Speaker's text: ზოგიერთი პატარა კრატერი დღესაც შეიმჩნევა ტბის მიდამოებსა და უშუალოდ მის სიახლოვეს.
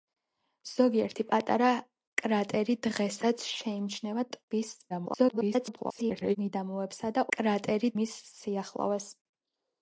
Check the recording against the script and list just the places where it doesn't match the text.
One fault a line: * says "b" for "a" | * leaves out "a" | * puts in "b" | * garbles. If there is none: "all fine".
* garbles
* says "კრატერი" for "უშუალოდ"